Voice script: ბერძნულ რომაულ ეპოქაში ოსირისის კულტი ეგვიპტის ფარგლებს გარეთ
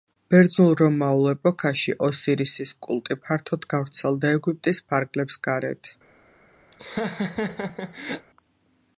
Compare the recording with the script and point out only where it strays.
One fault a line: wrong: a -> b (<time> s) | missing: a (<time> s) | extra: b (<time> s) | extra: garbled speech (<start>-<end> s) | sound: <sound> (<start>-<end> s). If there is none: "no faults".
extra: ფართოდ გავრცელდა (3.3 s)
sound: laugh (6.7-8.3 s)